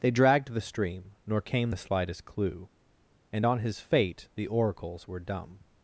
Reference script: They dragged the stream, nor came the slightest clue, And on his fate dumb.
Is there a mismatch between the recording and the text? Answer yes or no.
yes